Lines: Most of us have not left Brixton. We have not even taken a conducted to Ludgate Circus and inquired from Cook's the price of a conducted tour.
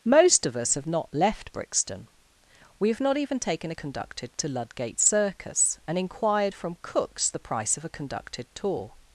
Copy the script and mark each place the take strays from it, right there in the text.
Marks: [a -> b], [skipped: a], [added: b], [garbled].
Most of us have not left Brixton. We have not even taken a conducted to Ludgate Circus and inquired from Cook's the price of a conducted tour.